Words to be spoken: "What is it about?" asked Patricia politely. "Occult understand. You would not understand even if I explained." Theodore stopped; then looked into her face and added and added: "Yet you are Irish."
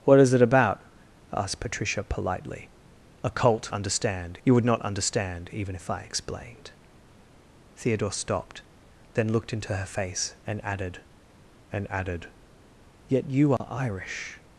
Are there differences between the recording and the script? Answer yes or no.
no